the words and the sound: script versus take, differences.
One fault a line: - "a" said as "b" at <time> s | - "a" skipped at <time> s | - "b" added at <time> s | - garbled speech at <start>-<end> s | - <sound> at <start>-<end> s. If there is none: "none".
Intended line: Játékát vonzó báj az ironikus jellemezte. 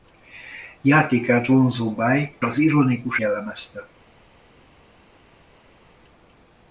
none